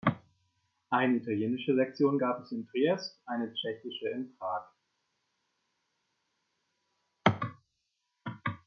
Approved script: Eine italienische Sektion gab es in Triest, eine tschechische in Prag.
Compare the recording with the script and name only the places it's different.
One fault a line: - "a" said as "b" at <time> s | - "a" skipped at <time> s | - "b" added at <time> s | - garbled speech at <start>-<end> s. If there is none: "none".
none